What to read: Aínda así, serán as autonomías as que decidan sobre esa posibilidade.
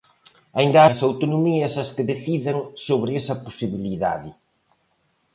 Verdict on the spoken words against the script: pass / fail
fail